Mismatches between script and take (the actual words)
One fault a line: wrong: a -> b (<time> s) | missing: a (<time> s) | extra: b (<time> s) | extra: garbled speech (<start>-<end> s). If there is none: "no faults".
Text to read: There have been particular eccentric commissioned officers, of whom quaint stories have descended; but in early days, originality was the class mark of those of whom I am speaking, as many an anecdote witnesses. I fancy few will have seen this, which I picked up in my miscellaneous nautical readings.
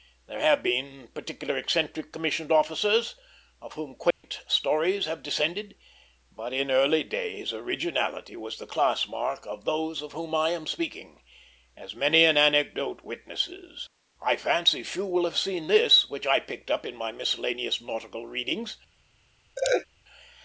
no faults